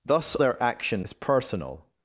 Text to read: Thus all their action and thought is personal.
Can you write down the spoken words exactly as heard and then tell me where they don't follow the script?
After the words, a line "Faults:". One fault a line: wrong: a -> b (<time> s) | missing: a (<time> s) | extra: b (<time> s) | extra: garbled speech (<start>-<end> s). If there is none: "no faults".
Thus their action is personal.
Faults:
missing: all (0.3 s)
missing: and thought (1.0 s)